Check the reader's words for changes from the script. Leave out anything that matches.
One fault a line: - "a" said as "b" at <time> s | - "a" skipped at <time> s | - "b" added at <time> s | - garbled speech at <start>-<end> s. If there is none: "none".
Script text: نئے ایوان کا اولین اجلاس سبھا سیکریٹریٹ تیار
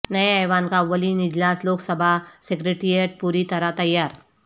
- "لوک" added at 1.6 s
- "پوری طرح" added at 3.2 s